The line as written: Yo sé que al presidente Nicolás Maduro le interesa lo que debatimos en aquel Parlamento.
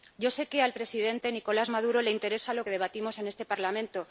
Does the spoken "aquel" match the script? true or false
false